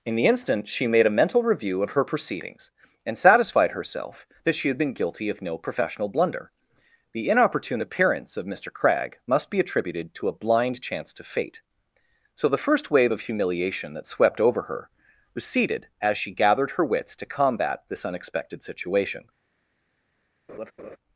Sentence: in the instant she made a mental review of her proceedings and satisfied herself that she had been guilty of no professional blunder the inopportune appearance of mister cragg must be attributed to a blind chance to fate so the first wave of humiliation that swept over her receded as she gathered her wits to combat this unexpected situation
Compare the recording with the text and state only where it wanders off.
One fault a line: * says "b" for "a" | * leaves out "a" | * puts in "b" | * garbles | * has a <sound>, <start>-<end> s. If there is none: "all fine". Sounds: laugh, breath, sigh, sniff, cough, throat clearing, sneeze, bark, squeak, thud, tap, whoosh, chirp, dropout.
* has a laugh, 20.5-21.0 s